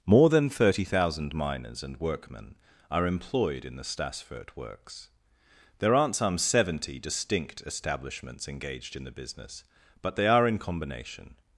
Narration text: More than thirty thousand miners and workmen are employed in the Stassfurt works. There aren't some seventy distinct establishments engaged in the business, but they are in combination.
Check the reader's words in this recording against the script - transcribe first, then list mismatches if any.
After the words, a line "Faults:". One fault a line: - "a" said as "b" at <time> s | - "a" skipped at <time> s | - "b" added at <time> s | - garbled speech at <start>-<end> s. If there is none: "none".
More than thirty thousand miners and workmen are employed in the Stassfurt works. There aren't some seventy distinct establishments engaged in the business, but they are in combination.
Faults:
none